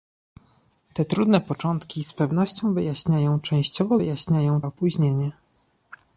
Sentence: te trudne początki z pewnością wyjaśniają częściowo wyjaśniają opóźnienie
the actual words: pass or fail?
pass